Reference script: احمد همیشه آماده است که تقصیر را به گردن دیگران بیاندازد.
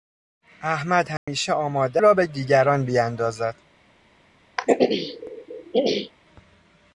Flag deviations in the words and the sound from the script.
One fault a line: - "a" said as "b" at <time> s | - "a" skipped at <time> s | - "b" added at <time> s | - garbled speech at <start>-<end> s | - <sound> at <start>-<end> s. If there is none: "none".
- dropout at 1.2-1.3 s
- "است که تقصیر" skipped at 2.0 s
- "گردن" skipped at 2.3 s
- throat clearing at 4.6-6.1 s